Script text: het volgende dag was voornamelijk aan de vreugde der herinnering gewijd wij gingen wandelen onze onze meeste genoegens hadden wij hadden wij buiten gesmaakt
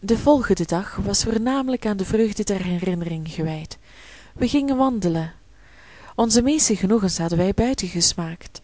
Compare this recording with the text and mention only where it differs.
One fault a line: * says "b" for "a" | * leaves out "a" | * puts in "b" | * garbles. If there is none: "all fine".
* says "de" for "het"
* leaves out "onze"
* leaves out "hadden wij"